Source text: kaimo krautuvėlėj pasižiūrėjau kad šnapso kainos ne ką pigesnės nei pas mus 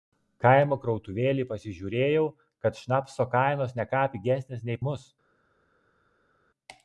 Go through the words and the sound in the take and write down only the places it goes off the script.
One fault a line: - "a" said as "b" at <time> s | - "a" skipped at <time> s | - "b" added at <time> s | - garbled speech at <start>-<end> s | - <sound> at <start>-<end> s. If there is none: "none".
- "pas" skipped at 4.8 s